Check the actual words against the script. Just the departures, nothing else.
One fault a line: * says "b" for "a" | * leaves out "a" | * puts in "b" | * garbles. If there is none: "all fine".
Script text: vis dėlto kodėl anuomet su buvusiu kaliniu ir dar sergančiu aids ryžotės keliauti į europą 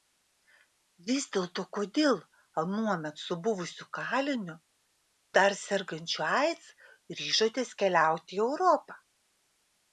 * leaves out "ir"